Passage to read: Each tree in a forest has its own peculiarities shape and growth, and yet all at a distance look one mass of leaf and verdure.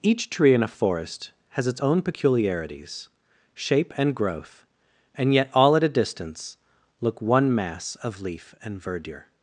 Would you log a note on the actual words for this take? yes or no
no